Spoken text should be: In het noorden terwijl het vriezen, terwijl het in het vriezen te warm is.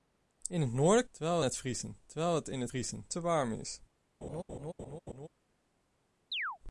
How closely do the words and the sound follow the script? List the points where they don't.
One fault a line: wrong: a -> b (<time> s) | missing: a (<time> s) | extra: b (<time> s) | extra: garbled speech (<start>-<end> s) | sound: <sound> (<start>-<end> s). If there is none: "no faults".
sound: laugh (4.2-5.3 s)
sound: chirp (6.3-6.6 s)